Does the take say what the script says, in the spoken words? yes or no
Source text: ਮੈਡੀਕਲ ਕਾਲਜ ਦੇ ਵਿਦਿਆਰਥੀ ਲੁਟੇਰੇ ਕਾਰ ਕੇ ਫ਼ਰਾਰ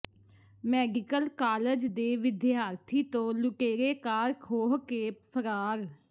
no